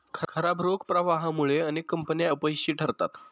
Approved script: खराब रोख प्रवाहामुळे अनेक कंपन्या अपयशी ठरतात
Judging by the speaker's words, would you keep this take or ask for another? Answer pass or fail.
pass